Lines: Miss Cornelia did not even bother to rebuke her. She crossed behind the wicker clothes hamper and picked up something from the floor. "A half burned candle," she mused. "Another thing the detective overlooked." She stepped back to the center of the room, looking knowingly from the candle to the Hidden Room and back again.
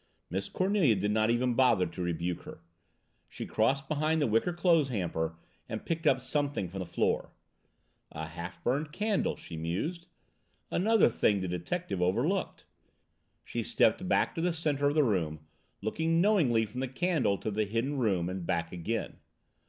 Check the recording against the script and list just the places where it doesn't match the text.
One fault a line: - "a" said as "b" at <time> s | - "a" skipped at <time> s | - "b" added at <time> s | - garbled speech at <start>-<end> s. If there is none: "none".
none